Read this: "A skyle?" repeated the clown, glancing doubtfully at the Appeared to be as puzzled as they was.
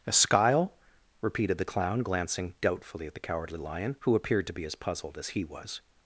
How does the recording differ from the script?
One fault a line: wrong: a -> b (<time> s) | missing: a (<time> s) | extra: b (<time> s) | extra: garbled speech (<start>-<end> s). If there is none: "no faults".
extra: Cowardly Lion who (3.2 s)
wrong: they -> he (5.3 s)